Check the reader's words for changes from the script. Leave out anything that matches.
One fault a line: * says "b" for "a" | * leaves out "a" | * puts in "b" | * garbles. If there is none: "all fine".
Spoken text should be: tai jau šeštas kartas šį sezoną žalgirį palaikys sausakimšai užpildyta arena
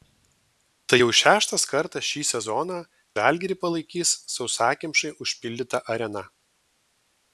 all fine